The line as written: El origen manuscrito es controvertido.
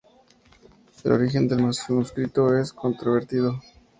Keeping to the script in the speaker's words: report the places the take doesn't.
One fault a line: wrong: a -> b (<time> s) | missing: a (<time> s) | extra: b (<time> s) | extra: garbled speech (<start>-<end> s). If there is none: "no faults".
extra: del (1.5 s)